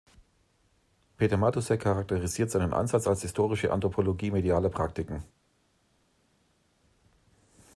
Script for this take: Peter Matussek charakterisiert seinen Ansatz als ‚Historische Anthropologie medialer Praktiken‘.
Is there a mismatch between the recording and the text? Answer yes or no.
no